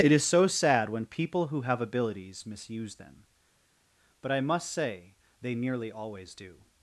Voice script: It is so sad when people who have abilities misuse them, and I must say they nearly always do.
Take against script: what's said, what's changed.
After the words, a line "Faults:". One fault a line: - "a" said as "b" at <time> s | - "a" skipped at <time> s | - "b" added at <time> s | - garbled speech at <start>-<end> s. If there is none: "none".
It is so sad when people who have abilities misuse them, but I must say they nearly always do.
Faults:
- "and" said as "but" at 4.2 s